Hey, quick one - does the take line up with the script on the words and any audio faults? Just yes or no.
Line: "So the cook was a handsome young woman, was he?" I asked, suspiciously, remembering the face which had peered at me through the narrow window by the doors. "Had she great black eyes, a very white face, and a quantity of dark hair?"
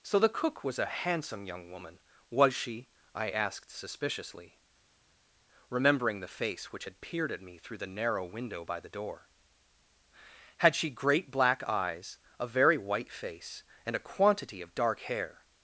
no